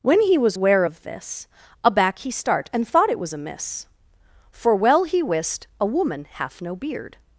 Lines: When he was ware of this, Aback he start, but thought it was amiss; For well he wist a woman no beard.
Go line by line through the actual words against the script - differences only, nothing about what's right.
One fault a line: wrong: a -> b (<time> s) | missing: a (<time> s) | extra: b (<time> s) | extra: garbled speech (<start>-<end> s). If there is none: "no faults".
wrong: but -> and (2.7 s)
extra: hath (6.3 s)